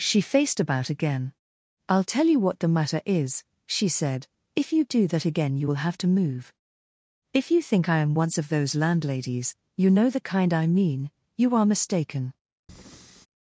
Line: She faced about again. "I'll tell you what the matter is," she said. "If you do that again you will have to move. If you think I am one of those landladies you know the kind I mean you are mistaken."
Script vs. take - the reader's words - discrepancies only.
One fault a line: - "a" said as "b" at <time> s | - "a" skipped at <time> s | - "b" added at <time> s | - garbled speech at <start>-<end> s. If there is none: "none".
- "one" said as "once" at 8.1 s